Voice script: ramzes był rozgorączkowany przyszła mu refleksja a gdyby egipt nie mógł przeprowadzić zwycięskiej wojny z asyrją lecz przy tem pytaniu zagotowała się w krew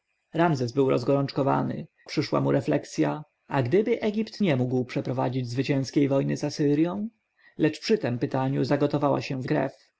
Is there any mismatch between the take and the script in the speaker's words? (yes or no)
no